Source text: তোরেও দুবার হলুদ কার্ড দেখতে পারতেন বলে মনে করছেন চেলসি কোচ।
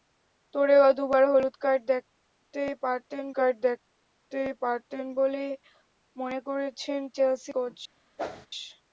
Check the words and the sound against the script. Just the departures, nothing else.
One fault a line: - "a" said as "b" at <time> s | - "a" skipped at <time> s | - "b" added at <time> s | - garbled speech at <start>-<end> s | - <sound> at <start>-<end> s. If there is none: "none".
- "কার্ড দেখতে পারতেন" added at 3.4 s
- whoosh at 8.2-8.5 s